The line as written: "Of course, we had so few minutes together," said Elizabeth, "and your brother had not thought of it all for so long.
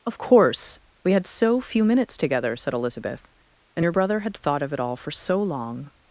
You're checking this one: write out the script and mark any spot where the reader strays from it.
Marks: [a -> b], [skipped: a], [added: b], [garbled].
"Of course, we had so few minutes together," said Elizabeth, "and your brother had [skipped: not] thought of it all for so long.